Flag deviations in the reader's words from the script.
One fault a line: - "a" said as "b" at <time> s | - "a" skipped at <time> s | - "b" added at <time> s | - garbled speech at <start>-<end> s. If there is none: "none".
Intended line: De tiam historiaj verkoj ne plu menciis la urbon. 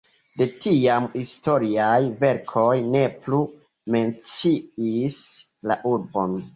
none